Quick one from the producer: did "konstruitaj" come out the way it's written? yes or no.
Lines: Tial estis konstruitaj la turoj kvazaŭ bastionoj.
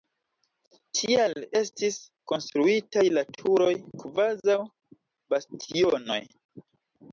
yes